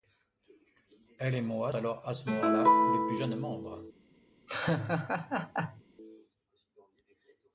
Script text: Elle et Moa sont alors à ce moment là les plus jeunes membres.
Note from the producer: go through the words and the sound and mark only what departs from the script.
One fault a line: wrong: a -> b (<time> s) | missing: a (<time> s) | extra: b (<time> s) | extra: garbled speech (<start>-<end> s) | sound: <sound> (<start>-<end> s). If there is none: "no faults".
missing: sont (1.7 s)
sound: laugh (4.5-5.8 s)